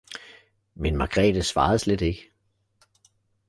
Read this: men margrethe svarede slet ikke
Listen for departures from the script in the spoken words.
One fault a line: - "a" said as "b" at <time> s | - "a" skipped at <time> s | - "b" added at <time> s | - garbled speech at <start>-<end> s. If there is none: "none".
none